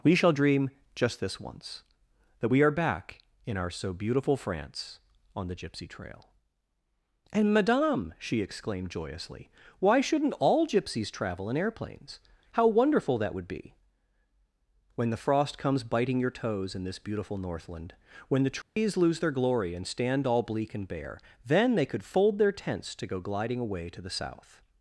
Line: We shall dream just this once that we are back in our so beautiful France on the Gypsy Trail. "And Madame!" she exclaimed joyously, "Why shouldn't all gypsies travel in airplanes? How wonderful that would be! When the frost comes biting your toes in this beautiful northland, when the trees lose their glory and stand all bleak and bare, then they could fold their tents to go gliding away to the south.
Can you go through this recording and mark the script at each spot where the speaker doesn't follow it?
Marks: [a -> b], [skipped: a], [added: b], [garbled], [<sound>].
We shall dream just this once that we are back in our so beautiful France on the Gypsy Trail. "And Madame!" she exclaimed joyously, "Why shouldn't all gypsies travel in airplanes? How wonderful that would be! When the frost comes biting your toes in this beautiful northland, when the trees [dropout] lose their glory and stand all bleak and bare, then they could fold their tents to go gliding away to the south.